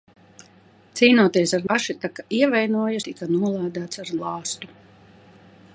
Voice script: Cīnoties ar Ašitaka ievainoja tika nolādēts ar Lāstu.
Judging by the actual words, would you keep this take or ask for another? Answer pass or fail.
pass